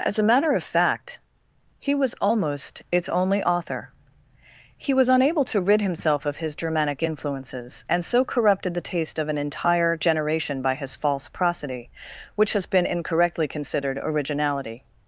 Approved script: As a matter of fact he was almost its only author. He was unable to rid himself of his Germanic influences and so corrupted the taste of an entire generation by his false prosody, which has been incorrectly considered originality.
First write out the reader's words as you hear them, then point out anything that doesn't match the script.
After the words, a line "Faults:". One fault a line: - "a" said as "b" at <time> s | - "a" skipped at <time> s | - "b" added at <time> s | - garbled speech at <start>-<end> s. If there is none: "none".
As a matter of fact he was almost its only author. He was unable to rid himself of his Germanic influences and so corrupted the taste of an entire generation by his false prosody, which has been incorrectly considered originality.
Faults:
none